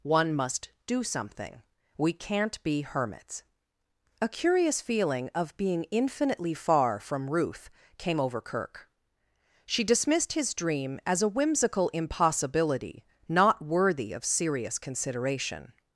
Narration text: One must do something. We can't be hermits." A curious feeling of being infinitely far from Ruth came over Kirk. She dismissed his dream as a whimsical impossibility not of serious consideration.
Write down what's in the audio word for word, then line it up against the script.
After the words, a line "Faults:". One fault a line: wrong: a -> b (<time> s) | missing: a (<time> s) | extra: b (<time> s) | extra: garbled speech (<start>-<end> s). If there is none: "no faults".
One must do something. We can't be hermits." A curious feeling of being infinitely far from Ruth came over Kirk. She dismissed his dream as a whimsical impossibility not worthy of serious consideration.
Faults:
extra: worthy (13.6 s)